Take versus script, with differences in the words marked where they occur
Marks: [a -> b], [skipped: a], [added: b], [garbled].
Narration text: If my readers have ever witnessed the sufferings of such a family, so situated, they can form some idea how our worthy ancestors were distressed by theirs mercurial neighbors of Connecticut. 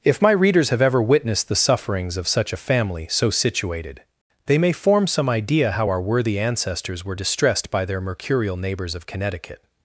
If my readers have ever witnessed the sufferings of such a family, so situated, they [can -> may] form some idea how our worthy ancestors were distressed by [theirs -> their] mercurial neighbors of Connecticut.